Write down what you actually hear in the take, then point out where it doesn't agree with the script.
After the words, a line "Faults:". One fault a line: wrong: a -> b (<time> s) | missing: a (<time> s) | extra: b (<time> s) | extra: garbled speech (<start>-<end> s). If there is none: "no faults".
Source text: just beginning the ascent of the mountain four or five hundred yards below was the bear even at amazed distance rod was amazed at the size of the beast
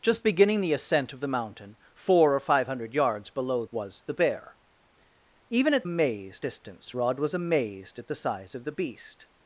just beginning the ascent of the mountain four or five hundred yards below was the bear even at amazed distance rod was amazed at the size of the beast
Faults:
no faults